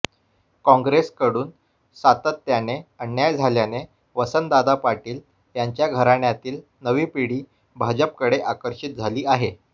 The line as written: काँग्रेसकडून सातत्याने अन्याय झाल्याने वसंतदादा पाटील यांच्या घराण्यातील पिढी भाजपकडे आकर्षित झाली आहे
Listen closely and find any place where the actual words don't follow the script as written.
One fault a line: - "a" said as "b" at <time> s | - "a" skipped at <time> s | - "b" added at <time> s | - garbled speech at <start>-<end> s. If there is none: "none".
- "नवी" added at 6.8 s